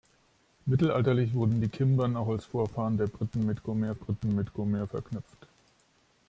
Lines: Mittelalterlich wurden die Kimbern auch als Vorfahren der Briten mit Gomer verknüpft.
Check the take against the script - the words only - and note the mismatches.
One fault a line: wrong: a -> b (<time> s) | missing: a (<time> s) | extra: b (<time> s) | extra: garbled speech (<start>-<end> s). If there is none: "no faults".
extra: Briten mit Gomer (3.9 s)